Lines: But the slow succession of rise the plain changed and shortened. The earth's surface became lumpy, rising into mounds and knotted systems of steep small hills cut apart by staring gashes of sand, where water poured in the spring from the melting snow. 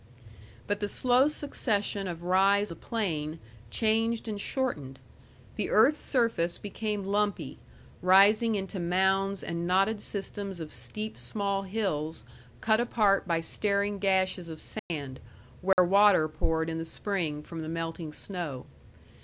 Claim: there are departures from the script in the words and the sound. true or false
true